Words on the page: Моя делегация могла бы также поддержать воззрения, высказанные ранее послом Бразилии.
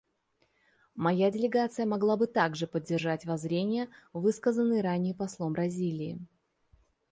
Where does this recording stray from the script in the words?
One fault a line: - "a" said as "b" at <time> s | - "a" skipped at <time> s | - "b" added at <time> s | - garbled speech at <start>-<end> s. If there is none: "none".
none